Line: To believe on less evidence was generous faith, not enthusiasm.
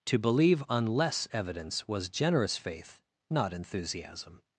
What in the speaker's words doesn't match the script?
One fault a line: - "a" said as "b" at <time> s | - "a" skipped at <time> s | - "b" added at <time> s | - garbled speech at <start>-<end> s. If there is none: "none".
none